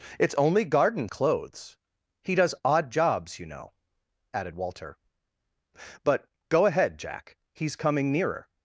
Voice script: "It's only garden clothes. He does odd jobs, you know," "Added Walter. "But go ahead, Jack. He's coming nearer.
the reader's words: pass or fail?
pass